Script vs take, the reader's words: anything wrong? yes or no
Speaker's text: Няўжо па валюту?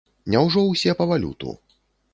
yes